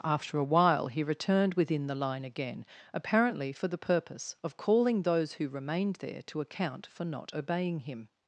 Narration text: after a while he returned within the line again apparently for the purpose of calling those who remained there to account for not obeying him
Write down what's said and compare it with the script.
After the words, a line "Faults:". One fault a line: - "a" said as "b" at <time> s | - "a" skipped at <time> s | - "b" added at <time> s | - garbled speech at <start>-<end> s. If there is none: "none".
after a while he returned within the line again apparently for the purpose of calling those who remained there to account for not obeying him
Faults:
none